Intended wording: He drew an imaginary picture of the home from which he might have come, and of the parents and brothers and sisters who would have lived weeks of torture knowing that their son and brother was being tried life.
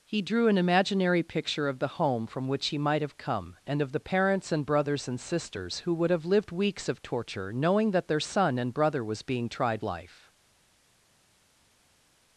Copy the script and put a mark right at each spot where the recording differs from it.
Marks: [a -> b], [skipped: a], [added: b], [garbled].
He drew an imaginary picture of the home from which he might have come, and of the parents and brothers and sisters who would have lived weeks of torture knowing that their son and brother was being tried life.